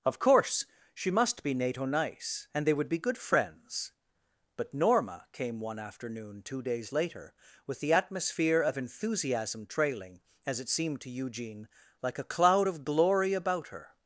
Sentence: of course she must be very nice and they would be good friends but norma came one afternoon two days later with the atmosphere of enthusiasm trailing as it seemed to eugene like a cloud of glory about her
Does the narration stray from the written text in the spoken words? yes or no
yes